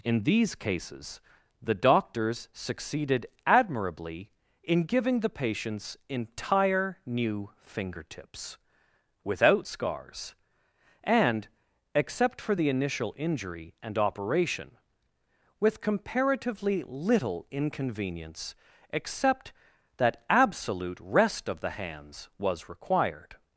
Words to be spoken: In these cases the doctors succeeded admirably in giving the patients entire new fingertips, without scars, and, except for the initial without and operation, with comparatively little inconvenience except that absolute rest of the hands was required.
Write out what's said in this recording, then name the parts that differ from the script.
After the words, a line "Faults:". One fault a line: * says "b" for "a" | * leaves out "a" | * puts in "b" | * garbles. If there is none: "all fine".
In these cases the doctors succeeded admirably in giving the patients entire new fingertips, without scars, and, except for the initial injury and operation, with comparatively little inconvenience except that absolute rest of the hands was required.
Faults:
* says "injury" for "without"